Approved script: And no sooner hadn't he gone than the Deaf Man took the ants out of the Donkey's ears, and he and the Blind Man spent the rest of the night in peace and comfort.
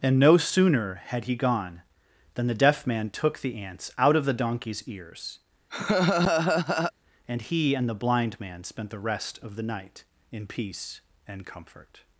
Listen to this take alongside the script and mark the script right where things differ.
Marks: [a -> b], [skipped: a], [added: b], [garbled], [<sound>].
And no sooner [hadn't -> had] he gone than the Deaf Man took the ants out of the Donkey's ears, [laugh] and he and the Blind Man spent the rest of the night in peace and comfort.